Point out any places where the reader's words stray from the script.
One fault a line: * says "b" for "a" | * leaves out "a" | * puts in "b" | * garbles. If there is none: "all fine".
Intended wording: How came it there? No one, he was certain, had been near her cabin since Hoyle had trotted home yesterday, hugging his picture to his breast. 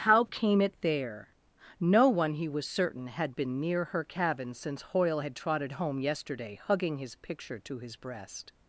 all fine